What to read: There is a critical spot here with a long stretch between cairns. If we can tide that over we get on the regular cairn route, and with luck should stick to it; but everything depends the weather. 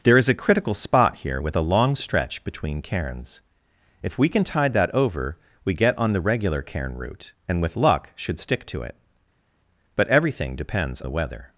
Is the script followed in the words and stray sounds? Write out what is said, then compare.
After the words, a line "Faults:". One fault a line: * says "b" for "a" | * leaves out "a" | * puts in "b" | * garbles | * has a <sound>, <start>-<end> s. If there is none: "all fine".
There is a critical spot here with a long stretch between cairns. If we can tide that over we get on the regular cairn route, and with luck should stick to it; but everything depends the weather.
Faults:
all fine